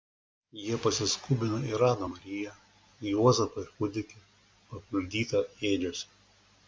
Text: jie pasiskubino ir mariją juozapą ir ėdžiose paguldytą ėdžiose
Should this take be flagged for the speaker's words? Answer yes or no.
yes